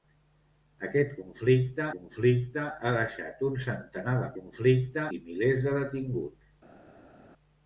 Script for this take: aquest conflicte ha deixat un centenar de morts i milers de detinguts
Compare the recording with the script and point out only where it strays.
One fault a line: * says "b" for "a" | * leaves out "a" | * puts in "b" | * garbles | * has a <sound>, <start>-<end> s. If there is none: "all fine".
* puts in "conflicte"
* says "conflicte" for "morts"